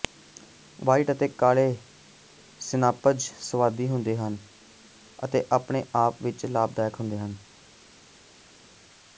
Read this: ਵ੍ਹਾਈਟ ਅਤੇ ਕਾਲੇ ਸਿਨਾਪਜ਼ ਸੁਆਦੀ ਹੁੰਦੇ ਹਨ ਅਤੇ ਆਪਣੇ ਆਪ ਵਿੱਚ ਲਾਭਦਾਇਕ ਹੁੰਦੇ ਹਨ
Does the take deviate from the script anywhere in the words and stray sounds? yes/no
no